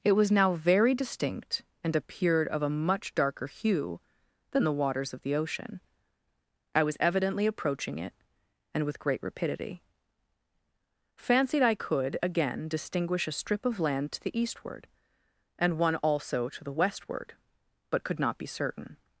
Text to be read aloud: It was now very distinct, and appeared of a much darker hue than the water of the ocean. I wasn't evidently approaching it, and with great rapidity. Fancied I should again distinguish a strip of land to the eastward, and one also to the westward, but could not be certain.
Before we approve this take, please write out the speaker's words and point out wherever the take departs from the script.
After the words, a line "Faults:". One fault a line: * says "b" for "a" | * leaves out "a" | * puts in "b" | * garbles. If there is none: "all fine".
It was now very distinct, and appeared of a much darker hue than the waters of the ocean. I was evidently approaching it, and with great rapidity. Fancied I could again distinguish a strip of land to the eastward, and one also to the westward, but could not be certain.
Faults:
* says "waters" for "water"
* says "was" for "wasn't"
* says "could" for "should"